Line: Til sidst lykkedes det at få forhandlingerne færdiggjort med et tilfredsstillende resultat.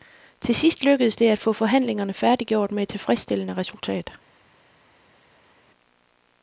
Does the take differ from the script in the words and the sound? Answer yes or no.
no